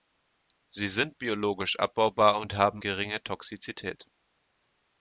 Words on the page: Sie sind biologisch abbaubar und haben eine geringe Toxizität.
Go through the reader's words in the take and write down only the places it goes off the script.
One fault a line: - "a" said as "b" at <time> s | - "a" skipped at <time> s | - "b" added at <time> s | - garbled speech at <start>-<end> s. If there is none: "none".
- "eine" skipped at 2.8 s